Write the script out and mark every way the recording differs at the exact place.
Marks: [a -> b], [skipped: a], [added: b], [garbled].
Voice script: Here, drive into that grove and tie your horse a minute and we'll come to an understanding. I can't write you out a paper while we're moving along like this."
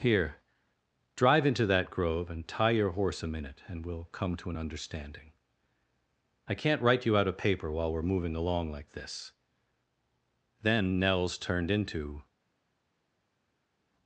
Here, drive into that grove and tie your horse a minute and we'll come to an understanding. I can't write you out a paper while we're moving along like this." [added: Then Nels turned into]